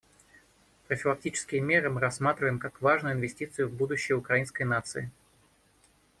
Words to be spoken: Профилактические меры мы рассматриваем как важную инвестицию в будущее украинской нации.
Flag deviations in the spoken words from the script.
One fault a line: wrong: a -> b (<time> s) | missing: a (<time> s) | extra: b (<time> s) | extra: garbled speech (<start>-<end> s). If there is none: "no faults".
no faults